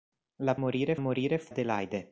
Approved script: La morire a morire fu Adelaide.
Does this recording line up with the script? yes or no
yes